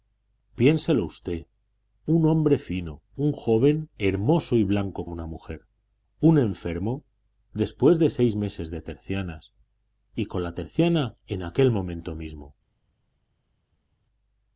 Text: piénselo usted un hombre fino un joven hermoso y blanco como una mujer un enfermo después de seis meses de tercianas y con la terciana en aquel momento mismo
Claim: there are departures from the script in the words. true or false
true